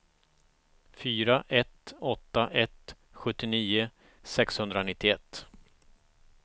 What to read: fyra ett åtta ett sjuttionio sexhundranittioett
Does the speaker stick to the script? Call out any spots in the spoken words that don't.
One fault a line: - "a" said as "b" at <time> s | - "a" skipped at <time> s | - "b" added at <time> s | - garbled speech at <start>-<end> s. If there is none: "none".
none